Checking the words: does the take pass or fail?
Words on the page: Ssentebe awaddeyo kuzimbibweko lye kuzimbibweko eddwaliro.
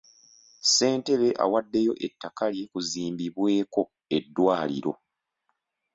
fail